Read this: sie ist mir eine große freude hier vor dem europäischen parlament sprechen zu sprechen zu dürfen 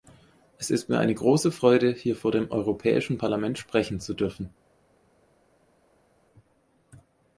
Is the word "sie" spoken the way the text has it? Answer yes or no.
no